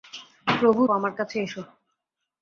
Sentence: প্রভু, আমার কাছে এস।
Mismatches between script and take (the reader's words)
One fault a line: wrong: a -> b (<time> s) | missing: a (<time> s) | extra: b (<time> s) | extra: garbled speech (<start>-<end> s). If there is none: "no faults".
no faults